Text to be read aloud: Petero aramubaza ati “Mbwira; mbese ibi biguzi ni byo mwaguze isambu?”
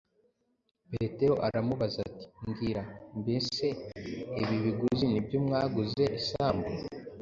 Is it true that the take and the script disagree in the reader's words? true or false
false